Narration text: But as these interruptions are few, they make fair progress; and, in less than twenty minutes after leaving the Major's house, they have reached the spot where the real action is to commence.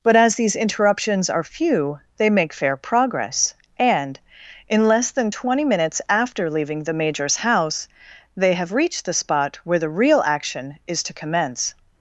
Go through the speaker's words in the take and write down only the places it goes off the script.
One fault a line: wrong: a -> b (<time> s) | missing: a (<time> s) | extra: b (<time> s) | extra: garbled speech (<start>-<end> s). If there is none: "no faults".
no faults